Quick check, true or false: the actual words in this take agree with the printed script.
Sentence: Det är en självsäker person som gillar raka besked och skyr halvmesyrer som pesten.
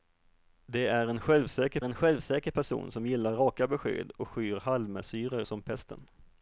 false